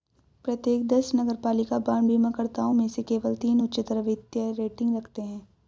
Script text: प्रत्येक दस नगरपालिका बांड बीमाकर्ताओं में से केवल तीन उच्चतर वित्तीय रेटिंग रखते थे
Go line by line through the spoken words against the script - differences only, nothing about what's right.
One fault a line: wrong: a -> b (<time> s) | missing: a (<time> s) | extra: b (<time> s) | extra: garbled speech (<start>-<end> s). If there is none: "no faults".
wrong: थे -> हैं (5.2 s)